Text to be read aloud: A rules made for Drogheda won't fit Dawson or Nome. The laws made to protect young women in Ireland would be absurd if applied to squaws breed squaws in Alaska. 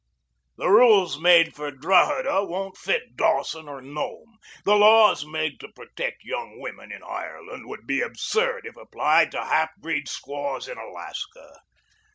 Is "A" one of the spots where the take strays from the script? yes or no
yes